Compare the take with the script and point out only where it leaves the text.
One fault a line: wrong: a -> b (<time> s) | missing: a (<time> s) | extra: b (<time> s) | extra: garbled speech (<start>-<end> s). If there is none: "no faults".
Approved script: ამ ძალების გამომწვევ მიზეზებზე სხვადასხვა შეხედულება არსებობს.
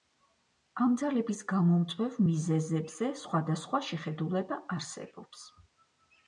no faults